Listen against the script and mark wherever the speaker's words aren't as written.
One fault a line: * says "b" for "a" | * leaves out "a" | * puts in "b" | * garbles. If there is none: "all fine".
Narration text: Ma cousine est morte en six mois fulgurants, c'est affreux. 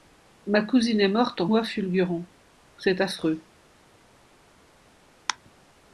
* leaves out "six"